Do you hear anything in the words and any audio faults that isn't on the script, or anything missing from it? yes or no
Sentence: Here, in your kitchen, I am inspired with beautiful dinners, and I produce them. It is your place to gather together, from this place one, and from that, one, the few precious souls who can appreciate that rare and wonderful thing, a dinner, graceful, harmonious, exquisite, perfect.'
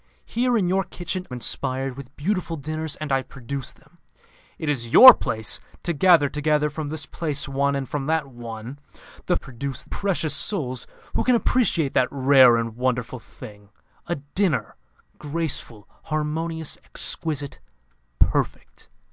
yes